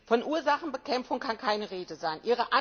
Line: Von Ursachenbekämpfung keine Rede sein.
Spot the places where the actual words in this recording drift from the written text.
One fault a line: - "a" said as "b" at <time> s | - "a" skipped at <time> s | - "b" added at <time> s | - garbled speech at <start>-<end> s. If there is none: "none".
- "kann" added at 1.2 s